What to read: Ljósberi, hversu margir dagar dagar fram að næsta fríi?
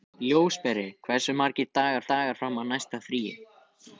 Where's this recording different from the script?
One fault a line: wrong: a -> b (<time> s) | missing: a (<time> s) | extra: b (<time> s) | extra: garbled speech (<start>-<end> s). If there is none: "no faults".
no faults